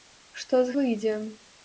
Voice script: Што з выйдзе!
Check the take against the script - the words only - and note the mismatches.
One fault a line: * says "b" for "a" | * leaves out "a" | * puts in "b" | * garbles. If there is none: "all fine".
all fine